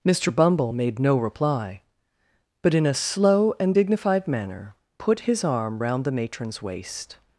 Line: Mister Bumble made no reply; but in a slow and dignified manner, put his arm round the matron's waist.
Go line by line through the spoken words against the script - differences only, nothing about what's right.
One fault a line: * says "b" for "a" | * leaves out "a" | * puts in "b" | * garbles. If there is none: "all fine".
all fine